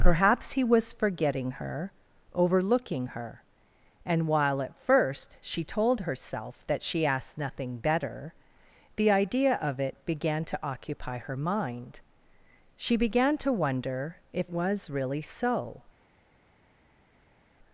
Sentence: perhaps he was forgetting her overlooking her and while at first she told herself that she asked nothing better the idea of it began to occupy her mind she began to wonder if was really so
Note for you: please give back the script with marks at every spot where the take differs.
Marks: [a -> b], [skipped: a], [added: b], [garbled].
perhaps he was forgetting her overlooking her and while at first she told herself that she asked nothing better the idea of it began to occupy her mind she began to wonder if was really so